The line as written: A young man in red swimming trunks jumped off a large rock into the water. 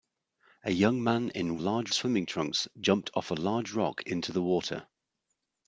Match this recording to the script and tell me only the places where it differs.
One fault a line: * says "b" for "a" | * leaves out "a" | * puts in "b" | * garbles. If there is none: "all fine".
* says "large" for "red"